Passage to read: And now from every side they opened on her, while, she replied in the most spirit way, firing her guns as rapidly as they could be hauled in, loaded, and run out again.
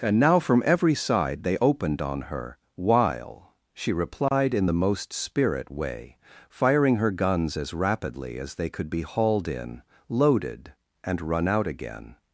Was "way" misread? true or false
false